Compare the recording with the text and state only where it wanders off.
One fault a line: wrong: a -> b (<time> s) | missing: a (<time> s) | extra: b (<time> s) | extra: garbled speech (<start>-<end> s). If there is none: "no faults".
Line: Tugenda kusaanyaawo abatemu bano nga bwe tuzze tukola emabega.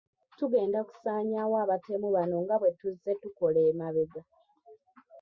no faults